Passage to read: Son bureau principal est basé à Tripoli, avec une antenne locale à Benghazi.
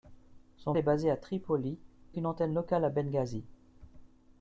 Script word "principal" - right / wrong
wrong